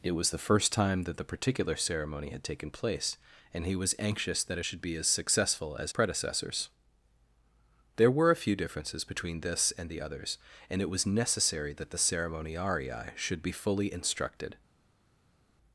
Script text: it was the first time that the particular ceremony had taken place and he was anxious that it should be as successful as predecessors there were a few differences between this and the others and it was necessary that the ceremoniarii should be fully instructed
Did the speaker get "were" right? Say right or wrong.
right